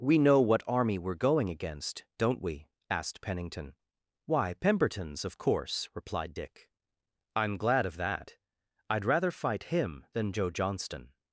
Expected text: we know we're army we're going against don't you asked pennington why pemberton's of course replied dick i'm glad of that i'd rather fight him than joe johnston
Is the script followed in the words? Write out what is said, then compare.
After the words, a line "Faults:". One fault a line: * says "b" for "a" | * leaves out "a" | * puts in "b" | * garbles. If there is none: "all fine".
we know what army we're going against don't we asked pennington why pemberton's of course replied dick i'm glad of that i'd rather fight him than joe johnston
Faults:
* says "what" for "we're"
* says "we" for "you"